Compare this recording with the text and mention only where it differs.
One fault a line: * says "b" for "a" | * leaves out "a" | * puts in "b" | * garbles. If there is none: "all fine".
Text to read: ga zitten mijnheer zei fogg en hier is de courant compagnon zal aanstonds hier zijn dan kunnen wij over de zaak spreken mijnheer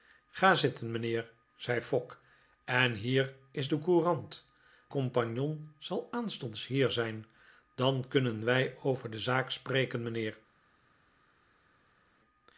all fine